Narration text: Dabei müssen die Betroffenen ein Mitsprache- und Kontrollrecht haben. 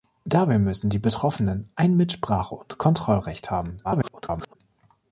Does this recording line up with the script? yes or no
no